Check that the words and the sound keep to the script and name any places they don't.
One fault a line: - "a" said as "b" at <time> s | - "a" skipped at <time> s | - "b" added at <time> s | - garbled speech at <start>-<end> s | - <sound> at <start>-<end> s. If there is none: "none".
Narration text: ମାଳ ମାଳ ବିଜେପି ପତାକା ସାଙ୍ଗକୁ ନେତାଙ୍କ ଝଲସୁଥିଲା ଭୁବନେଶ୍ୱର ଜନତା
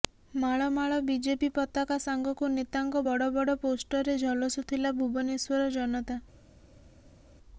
- "ବଡ଼ ବଡ଼ ପୋଷ୍ଟରରେ" added at 3.0 s